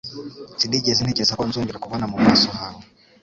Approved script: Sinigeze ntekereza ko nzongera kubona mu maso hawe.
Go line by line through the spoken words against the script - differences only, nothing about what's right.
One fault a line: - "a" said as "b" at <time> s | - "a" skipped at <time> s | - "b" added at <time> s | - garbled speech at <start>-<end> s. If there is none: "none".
none